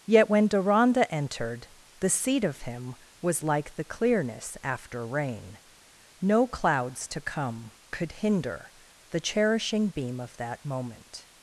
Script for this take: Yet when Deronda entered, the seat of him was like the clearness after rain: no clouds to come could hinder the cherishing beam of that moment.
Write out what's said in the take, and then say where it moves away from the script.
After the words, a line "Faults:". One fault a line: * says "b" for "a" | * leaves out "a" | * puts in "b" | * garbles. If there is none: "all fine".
Yet when Deronda entered, the seat of him was like the clearness after rain: no clouds to come could hinder the cherishing beam of that moment.
Faults:
all fine